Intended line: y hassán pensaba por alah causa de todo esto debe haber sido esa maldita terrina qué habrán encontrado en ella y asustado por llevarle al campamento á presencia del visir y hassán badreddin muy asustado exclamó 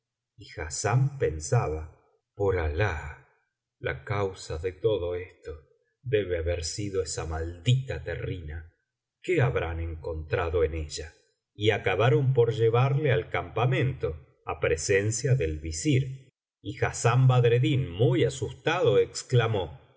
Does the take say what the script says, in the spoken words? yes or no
no